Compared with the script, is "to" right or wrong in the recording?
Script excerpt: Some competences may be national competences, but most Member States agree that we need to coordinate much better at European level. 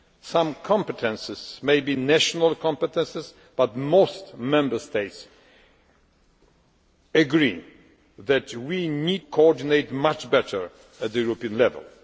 wrong